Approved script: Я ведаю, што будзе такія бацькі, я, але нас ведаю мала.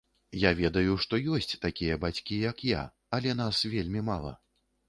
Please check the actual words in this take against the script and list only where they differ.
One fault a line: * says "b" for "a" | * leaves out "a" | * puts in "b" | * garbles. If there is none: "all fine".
* says "ёсць" for "будзе"
* puts in "як"
* says "вельмі" for "ведаю"